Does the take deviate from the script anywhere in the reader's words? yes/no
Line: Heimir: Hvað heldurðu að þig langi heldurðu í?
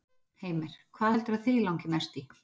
yes